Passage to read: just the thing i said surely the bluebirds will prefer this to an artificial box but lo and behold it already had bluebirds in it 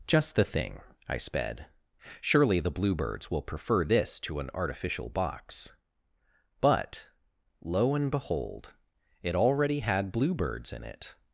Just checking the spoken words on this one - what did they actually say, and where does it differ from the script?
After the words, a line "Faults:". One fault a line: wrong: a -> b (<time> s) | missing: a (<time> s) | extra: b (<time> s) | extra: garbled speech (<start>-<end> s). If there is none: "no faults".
just the thing i sped surely the bluebirds will prefer this to an artificial box but lo and behold it already had bluebirds in it
Faults:
wrong: said -> sped (1.2 s)